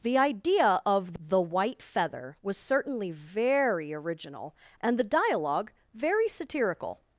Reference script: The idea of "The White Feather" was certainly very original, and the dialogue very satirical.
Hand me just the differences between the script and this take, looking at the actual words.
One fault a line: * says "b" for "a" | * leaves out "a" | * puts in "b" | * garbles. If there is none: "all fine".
all fine